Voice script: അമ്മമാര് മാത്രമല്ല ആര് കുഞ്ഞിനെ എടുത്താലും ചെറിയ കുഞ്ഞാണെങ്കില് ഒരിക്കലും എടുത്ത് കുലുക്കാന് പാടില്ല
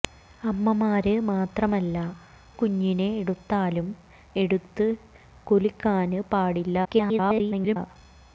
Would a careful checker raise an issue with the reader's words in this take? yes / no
yes